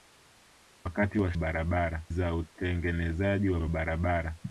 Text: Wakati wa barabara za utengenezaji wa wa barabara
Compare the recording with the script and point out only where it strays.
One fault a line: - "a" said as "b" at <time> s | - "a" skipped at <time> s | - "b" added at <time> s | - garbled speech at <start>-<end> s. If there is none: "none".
none